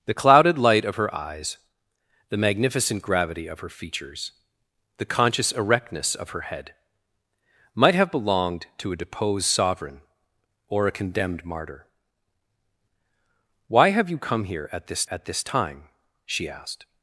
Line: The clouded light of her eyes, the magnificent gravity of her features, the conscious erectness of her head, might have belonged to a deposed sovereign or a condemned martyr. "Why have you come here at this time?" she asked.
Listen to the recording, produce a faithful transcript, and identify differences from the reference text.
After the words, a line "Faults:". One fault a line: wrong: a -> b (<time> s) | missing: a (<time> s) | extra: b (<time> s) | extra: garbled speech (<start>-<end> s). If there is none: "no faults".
The clouded light of her eyes, the magnificent gravity of her features, the conscious erectness of her head, might have belonged to a deposed sovereign or a condemned martyr. "Why have you come here at this at this time?" she asked.
Faults:
extra: at this (15.1 s)